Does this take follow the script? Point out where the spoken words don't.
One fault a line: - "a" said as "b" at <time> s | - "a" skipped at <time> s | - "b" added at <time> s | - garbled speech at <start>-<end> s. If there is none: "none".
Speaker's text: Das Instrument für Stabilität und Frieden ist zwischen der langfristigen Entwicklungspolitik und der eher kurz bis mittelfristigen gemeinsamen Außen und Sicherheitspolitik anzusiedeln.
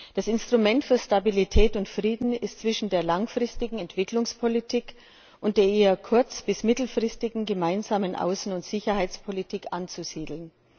none